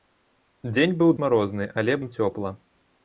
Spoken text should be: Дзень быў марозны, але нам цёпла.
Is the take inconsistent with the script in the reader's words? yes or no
no